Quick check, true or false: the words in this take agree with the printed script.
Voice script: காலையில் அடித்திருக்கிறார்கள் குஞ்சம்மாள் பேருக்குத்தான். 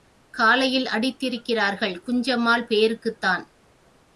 true